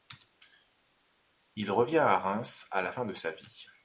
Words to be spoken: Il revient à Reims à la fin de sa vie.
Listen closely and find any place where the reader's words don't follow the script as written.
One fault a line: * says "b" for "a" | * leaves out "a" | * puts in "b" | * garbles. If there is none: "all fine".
all fine